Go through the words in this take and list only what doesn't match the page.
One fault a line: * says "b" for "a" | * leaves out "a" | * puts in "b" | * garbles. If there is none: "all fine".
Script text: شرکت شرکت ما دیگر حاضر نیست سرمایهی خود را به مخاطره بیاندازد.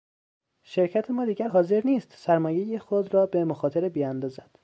* leaves out "شرکت"